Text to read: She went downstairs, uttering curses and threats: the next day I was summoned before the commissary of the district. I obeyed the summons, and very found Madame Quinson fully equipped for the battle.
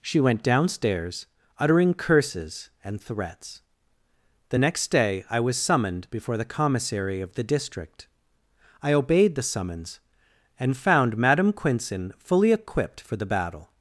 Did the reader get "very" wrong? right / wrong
wrong